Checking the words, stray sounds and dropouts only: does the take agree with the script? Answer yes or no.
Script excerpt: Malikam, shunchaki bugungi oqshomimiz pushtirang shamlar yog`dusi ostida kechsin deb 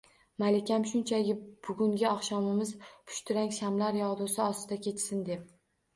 yes